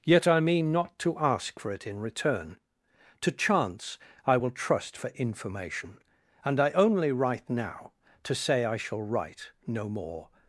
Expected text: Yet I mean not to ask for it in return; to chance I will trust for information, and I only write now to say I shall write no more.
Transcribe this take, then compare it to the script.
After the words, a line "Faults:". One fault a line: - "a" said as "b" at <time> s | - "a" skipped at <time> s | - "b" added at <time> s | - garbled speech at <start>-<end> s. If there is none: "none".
Yet I mean not to ask for it in return; to chance I will trust for information, and I only write now to say I shall write no more.
Faults:
none